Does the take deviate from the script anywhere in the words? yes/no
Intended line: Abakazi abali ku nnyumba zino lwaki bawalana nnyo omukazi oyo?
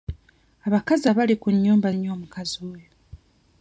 yes